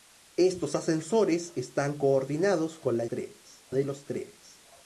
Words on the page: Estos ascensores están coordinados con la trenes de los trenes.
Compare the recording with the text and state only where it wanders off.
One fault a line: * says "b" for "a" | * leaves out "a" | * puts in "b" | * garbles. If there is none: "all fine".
all fine